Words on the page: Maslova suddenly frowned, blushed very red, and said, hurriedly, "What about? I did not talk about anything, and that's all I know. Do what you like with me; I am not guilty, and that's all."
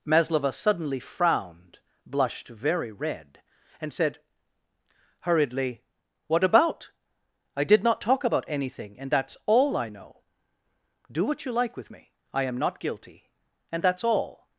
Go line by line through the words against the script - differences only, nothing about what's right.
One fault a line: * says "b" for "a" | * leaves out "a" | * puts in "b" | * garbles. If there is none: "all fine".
all fine